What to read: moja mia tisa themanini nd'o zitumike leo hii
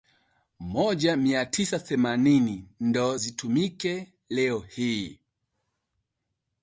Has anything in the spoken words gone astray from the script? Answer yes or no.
no